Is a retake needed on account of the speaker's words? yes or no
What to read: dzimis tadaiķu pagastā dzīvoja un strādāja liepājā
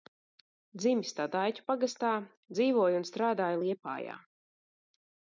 no